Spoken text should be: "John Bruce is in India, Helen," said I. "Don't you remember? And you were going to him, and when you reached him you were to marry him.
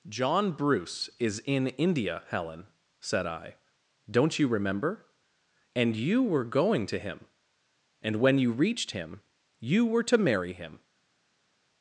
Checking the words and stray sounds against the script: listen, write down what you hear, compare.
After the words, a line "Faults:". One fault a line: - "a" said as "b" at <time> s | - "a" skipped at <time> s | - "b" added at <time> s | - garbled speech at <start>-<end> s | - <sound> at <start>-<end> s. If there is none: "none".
"John Bruce is in India, Helen," said I. "Don't you remember? And you were going to him, and when you reached him you were to marry him.
Faults:
none